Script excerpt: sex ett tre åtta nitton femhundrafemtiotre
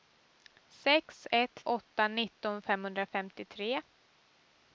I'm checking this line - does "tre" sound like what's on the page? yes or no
no